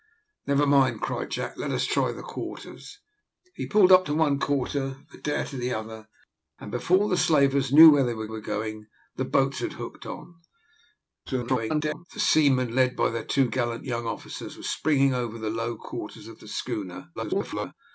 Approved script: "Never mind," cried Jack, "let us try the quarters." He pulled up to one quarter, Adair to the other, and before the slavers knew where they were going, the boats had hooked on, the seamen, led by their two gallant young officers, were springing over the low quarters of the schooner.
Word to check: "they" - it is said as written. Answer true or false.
true